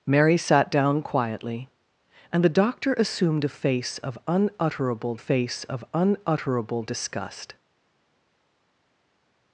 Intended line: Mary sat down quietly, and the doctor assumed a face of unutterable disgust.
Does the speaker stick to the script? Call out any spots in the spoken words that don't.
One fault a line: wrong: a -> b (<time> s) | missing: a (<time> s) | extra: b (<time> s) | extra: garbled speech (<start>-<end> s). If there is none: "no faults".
extra: face of unutterable (5.1 s)